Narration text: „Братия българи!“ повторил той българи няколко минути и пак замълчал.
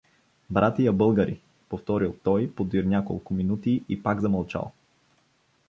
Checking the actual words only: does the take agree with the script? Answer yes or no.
no